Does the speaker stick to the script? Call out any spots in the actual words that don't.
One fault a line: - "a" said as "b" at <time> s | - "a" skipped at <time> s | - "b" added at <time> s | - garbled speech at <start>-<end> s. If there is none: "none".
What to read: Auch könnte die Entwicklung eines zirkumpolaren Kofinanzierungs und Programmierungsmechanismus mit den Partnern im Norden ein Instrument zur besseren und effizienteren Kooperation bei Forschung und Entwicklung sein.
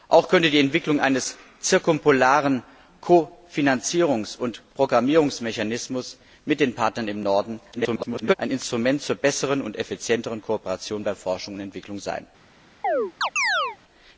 - garbled speech at 7.7-8.3 s